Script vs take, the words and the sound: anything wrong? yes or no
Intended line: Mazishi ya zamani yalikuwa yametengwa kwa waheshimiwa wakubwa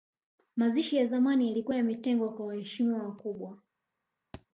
yes